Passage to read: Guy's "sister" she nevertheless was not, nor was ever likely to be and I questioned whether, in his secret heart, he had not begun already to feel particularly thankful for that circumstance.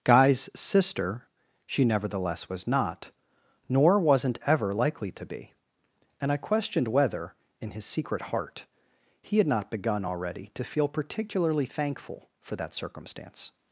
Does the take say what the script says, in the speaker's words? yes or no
no